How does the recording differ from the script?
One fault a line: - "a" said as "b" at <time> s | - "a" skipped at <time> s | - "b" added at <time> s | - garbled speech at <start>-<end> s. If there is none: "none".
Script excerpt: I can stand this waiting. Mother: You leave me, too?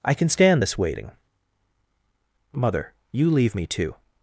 none